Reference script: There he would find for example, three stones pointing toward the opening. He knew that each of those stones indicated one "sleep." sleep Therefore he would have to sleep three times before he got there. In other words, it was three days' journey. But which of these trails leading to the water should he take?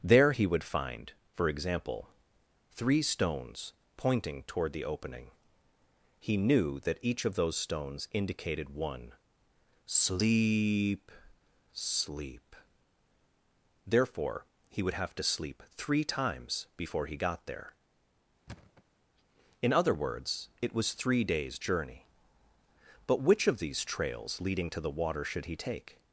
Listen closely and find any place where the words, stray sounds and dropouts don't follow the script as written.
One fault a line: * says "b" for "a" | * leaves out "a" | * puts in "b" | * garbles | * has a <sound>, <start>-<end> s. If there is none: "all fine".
* has a thud, 18.5-18.8 s